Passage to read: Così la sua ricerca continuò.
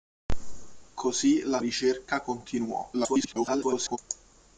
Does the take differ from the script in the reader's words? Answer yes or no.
yes